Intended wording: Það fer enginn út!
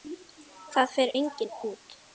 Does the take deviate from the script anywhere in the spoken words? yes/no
no